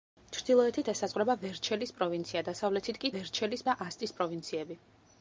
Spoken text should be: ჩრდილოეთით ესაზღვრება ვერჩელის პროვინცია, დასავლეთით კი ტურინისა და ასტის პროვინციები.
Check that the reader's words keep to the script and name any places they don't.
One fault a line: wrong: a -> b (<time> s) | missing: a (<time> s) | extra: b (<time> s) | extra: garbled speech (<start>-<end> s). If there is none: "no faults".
wrong: ტურინისა -> ვერჩელის (3.1 s)